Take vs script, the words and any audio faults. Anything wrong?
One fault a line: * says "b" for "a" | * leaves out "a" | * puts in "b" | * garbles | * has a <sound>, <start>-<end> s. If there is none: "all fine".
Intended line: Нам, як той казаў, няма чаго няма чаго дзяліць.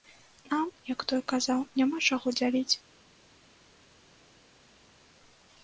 * leaves out "няма чаго"